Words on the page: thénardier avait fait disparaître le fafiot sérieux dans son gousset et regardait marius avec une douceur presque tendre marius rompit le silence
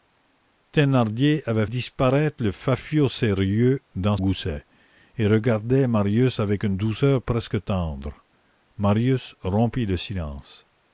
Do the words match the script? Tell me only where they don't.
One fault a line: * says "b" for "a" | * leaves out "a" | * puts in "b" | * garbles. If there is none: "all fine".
* leaves out "fait"
* leaves out "son"